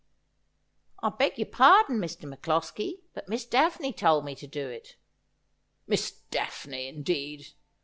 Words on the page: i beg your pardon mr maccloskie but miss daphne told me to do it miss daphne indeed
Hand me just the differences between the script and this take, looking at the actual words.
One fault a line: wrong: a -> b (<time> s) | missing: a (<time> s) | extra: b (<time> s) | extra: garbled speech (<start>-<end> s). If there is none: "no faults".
no faults